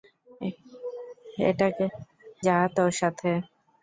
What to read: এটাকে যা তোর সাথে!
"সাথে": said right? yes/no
yes